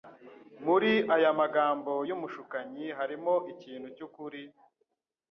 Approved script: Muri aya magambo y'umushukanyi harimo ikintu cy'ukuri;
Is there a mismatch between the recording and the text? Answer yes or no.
no